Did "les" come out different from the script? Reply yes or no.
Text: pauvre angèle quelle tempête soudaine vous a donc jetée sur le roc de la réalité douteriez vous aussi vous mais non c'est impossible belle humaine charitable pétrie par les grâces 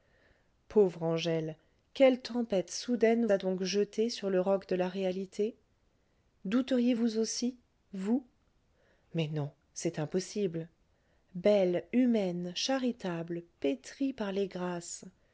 no